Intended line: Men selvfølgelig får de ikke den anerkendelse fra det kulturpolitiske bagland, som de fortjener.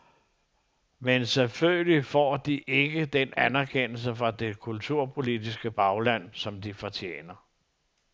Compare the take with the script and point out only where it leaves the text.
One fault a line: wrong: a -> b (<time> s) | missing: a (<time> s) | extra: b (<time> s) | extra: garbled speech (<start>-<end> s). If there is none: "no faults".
no faults